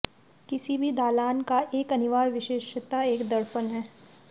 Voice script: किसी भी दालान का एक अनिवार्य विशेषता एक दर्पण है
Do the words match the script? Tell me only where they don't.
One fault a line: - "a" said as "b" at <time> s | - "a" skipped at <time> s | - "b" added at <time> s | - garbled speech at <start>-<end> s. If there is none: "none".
none